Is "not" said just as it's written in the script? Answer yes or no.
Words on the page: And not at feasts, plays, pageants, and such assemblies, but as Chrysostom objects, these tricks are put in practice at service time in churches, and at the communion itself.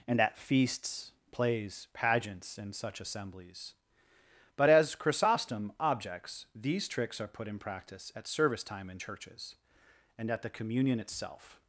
no